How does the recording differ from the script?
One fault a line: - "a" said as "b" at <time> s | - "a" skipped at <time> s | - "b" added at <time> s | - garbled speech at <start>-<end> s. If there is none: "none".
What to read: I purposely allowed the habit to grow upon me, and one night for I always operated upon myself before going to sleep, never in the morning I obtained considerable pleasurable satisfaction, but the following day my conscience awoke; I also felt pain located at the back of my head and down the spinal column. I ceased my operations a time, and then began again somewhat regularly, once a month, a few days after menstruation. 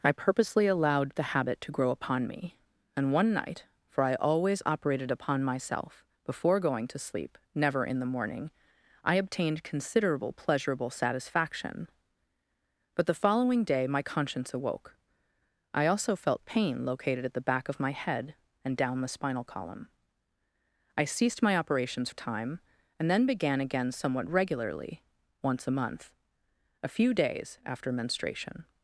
none